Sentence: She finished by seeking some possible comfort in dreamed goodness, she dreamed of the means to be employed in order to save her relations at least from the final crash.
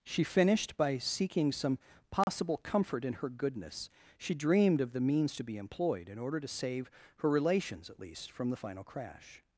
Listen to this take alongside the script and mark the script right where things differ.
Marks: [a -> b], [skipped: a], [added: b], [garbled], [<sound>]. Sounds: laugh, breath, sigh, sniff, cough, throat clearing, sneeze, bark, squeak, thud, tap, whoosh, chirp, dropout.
She finished by seeking some possible [dropout] comfort in [dreamed -> her] goodness, she dreamed of the means to be employed in order to save her relations at least from the final crash.